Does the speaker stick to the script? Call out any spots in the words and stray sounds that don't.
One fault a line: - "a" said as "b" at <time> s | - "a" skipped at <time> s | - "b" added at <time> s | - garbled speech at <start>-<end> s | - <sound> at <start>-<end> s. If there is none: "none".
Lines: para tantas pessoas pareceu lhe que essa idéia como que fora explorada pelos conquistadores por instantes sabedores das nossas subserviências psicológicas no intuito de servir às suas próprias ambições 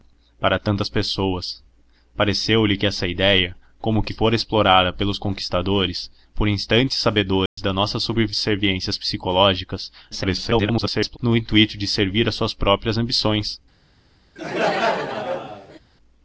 - dropout at 7.5-7.6 s
- garbled speech at 10.1-11.2 s
- laugh at 14.4-15.8 s